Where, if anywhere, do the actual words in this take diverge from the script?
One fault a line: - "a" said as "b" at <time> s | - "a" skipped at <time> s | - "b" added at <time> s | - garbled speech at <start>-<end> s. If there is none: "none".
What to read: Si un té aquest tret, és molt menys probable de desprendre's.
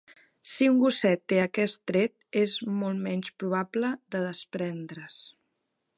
- "gosset" added at 0.8 s